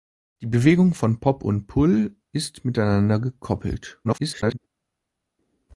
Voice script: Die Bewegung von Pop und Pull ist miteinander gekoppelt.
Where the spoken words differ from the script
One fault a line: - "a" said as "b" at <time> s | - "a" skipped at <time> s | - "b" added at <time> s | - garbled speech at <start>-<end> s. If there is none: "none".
- garbled speech at 4.0-4.6 s